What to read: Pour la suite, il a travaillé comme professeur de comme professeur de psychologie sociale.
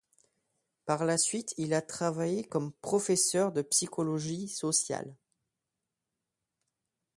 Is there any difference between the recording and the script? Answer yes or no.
yes